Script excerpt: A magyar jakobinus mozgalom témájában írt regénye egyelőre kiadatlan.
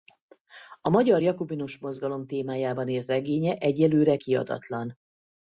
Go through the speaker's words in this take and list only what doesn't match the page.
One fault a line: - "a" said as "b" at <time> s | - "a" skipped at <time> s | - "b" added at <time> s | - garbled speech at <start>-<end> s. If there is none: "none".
none